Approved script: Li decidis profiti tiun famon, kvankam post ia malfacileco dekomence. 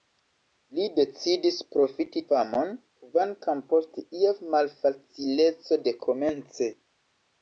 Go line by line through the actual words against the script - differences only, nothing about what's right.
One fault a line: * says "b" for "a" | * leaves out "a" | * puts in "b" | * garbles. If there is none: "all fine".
* leaves out "tiun"